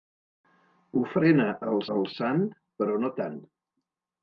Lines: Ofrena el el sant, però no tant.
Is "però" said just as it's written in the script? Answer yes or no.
yes